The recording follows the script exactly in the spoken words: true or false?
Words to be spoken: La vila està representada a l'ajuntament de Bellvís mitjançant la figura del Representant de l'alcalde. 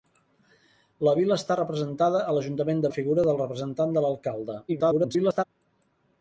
false